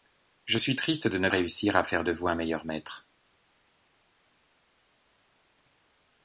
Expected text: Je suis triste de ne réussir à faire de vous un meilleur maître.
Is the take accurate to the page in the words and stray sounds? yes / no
yes